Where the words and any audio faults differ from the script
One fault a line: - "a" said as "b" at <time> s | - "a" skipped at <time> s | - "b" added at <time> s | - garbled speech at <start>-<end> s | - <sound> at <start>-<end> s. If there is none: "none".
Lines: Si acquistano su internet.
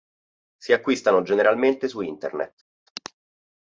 - "generalmente" added at 1.2 s